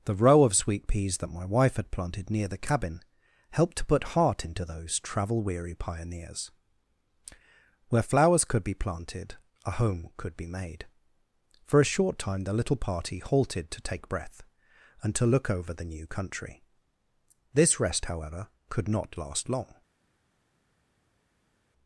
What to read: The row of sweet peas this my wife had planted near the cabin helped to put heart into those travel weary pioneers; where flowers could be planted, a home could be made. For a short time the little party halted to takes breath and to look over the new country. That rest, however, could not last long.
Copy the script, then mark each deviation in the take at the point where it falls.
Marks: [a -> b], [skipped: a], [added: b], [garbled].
The row of sweet peas [this -> that] my wife had planted near the cabin helped to put heart into those travel weary pioneers; where flowers could be planted, a home could be made. For a short time the little party halted to [takes -> take] breath and to look over the new country. [That -> This] rest, however, could not last long.